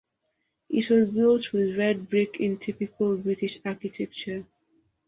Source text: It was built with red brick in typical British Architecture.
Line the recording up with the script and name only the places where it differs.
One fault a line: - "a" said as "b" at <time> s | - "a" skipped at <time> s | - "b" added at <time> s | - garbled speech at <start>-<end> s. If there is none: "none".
none